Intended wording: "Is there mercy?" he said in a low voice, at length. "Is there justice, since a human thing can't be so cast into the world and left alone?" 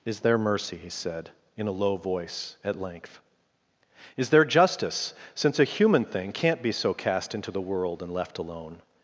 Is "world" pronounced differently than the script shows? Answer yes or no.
no